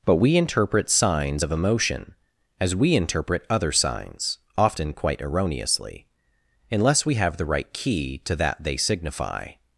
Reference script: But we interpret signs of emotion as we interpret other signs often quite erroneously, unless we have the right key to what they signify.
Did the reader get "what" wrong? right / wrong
wrong